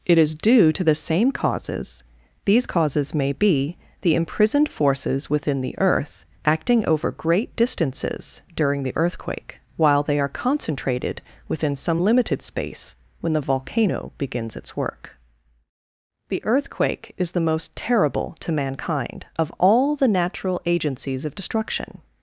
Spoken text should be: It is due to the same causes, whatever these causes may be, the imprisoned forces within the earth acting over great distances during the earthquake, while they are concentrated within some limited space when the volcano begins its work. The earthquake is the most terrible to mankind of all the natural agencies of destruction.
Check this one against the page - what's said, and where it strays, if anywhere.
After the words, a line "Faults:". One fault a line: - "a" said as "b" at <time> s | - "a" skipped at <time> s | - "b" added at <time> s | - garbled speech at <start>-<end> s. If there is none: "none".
It is due to the same causes, these causes may be, the imprisoned forces within the earth acting over great distances during the earthquake, while they are concentrated within some limited space when the volcano begins its work. The earthquake is the most terrible to mankind of all the natural agencies of destruction.
Faults:
- "whatever" skipped at 2.0 s